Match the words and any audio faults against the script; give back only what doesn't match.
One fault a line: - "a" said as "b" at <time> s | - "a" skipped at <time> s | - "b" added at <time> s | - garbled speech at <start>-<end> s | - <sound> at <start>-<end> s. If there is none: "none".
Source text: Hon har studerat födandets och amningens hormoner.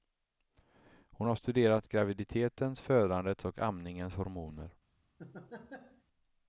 - "graviditetens" added at 1.9 s
- laugh at 5.2-6.0 s